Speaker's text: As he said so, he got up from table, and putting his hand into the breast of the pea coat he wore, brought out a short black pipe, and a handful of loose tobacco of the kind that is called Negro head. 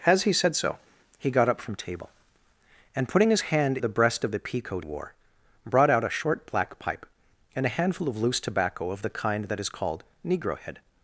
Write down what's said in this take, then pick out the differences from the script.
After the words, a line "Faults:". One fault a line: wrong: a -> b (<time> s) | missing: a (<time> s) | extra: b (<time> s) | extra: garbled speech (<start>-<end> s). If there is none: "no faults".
As he said so, he got up from table, and putting his hand the breast of the pea coat wore, brought out a short black pipe, and a handful of loose tobacco of the kind that is called Negro head.
Faults:
missing: into (3.8 s)
missing: he (4.9 s)